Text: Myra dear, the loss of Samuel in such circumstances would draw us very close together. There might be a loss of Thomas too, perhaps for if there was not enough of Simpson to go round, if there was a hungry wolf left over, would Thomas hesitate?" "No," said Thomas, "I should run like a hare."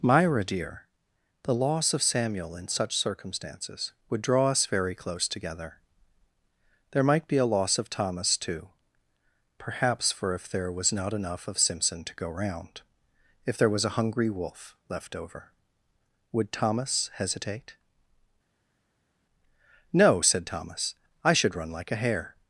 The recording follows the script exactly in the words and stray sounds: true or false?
true